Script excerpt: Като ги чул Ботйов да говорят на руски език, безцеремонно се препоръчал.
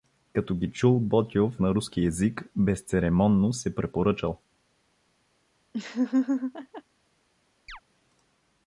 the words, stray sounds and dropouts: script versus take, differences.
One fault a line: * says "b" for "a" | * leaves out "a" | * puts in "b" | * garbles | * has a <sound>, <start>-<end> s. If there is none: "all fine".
* leaves out "да говорят"
* has a laugh, 5.7-6.8 s
* has a chirp, 7.7-7.8 s